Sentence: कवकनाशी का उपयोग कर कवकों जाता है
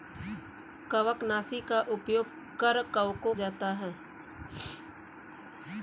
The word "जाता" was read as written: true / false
true